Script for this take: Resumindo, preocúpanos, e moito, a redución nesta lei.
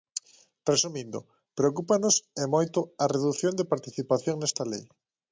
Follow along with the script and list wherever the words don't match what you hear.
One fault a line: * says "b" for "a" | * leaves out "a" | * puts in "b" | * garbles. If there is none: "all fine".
* puts in "de participación"